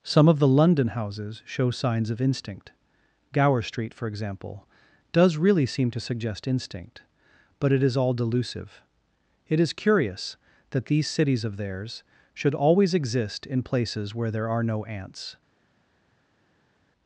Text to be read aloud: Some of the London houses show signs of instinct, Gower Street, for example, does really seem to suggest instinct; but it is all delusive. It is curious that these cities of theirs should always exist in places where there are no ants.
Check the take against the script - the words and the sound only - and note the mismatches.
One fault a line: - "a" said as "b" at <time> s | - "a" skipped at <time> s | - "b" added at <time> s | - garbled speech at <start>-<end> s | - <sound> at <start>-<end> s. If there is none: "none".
none